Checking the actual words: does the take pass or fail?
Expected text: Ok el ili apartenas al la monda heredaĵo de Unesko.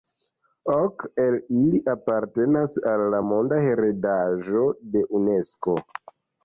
pass